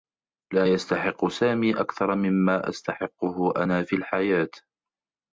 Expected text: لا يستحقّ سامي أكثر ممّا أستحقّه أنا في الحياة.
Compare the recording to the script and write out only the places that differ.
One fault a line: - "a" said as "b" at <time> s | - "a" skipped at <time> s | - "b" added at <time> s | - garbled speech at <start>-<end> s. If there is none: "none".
none